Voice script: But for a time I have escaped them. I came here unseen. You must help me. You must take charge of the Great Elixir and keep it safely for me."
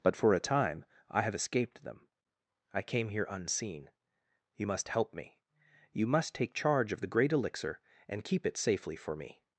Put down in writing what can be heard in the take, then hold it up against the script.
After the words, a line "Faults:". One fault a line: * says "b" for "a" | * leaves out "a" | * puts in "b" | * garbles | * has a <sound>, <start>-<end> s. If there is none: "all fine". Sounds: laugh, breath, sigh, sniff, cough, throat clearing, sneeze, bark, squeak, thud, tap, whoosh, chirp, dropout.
But for a time I have escaped them. I came here unseen. You must help me. You must take charge of the Great Elixir and keep it safely for me."
Faults:
all fine